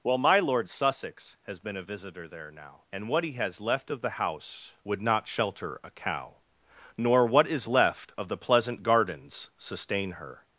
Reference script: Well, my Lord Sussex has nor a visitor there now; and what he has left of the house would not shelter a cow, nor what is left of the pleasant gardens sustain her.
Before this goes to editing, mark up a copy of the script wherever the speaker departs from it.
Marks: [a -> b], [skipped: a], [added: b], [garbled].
Well, my Lord Sussex has [nor -> been] a visitor there now; and what he has left of the house would not shelter a cow, nor what is left of the pleasant gardens sustain her.